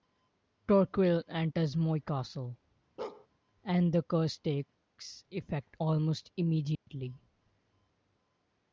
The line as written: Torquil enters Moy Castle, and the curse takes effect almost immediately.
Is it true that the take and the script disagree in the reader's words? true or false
false